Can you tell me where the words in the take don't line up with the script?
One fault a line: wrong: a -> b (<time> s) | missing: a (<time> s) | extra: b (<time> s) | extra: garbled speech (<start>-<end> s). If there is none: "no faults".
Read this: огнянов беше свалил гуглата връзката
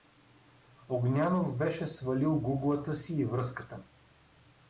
extra: си и (3.0 s)